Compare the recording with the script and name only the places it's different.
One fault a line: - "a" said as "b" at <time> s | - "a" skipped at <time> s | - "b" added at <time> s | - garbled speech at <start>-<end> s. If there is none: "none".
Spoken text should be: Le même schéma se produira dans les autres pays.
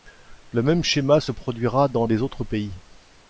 none